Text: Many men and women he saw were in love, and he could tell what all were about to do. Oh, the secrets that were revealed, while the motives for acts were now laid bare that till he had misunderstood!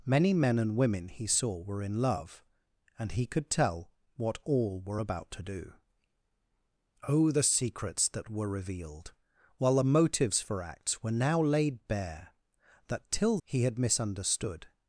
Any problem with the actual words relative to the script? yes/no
no